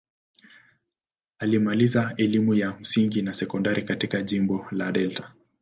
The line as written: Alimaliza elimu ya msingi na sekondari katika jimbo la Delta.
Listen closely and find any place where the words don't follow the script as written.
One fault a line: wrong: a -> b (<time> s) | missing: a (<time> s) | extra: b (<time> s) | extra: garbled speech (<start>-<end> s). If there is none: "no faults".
no faults